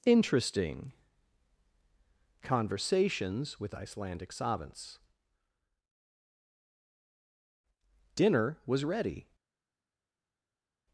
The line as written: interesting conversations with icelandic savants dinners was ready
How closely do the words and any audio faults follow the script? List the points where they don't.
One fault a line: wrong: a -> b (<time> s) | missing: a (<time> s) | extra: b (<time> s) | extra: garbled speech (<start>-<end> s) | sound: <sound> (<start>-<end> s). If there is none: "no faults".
wrong: dinners -> dinner (8.2 s)